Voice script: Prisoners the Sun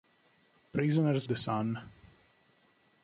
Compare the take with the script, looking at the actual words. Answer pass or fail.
pass